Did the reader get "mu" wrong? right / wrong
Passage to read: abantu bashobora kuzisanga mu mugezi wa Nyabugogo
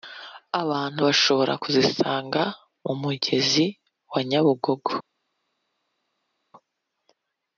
right